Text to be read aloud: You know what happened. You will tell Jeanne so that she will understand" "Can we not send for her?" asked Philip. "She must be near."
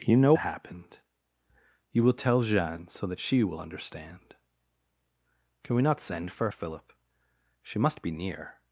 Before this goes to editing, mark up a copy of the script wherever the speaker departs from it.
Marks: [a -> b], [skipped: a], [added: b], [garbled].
You know [skipped: what] happened. You will tell Jeanne so that she will understand" "Can we not send for [skipped: her?" asked] Philip. "She must be near."